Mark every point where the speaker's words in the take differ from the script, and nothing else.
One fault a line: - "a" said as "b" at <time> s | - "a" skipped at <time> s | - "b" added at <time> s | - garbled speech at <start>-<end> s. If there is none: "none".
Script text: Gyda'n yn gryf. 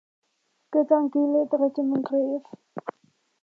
- "gilydd rydym" added at 1.2 s